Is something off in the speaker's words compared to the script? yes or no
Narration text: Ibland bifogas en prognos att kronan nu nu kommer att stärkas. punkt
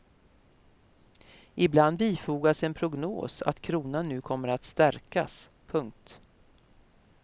yes